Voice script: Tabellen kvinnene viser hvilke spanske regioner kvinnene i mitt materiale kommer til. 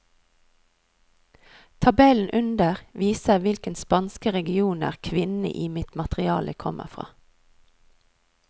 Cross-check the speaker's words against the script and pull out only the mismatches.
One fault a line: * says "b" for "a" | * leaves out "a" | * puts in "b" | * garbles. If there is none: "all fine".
* says "under" for "kvinnene"
* says "fra" for "til"